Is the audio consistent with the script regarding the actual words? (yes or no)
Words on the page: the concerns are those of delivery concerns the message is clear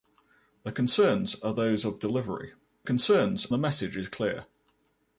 yes